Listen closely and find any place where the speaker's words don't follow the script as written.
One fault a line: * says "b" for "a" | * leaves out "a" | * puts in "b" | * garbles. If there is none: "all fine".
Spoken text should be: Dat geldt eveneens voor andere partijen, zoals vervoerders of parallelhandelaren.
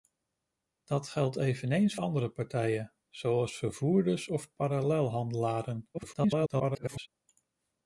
* leaves out "voor"
* garbles